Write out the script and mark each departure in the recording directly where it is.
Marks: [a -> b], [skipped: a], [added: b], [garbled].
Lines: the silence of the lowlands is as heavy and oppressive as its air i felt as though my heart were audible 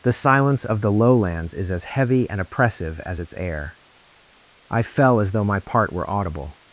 the silence of the lowlands is as heavy and oppressive as its air i [felt -> fell] as though my [heart -> part] were audible